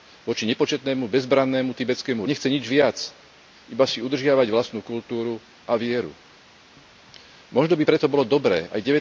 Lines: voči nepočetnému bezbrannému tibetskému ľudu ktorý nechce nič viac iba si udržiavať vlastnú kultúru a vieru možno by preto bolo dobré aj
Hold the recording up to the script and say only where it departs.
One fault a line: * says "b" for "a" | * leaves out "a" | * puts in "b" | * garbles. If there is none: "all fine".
* leaves out "ľudu ktorý"